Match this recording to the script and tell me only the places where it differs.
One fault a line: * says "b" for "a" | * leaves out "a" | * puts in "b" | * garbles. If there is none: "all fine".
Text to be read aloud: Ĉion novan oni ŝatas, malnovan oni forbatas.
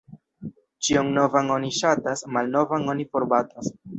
all fine